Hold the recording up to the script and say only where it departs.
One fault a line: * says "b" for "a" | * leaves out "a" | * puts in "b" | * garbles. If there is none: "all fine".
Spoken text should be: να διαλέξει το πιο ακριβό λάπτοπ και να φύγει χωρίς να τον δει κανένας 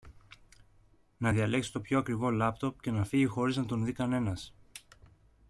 all fine